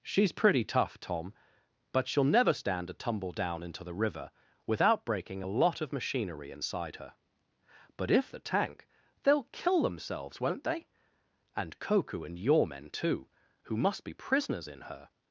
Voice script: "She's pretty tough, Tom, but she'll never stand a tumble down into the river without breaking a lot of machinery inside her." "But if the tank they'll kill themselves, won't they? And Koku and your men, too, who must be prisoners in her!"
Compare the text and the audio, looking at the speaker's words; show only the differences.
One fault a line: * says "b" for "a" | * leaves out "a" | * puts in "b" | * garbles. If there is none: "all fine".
all fine